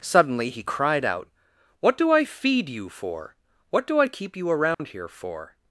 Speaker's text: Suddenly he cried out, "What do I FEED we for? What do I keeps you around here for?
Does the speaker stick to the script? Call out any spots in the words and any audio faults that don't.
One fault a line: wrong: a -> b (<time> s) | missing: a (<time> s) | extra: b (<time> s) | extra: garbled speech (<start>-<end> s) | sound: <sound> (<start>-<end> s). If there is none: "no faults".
wrong: we -> you (2.7 s)
wrong: keeps -> keep (4.1 s)
sound: dropout (4.7-4.8 s)